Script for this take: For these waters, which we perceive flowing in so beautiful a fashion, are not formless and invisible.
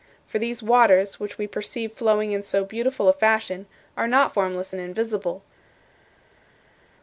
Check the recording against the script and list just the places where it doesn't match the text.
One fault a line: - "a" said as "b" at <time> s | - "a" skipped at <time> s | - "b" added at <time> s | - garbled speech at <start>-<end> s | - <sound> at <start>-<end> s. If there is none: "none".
none